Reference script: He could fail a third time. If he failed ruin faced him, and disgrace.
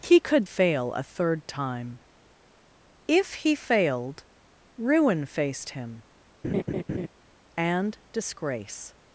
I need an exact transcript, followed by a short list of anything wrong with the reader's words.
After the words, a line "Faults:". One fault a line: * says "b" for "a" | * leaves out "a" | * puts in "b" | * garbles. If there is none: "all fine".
He could fail a third time. If he failed ruin faced him, and disgrace.
Faults:
all fine